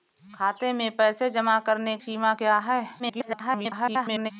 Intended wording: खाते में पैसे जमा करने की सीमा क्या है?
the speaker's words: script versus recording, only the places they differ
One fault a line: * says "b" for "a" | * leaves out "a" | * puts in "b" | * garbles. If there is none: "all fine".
* leaves out "की"
* garbles